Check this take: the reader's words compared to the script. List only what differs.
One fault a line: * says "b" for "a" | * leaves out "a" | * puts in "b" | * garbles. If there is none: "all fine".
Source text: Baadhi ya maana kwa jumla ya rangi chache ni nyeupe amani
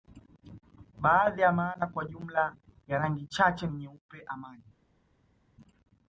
all fine